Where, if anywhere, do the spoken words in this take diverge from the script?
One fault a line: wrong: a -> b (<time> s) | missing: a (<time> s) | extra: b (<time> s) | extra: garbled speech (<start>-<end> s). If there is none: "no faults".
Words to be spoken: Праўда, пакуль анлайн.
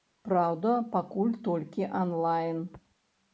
extra: толькі (1.5 s)